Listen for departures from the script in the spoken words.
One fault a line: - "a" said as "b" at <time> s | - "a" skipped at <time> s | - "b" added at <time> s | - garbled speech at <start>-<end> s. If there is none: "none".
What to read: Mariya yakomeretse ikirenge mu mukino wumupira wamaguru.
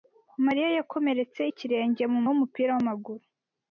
- "mukino" skipped at 2.2 s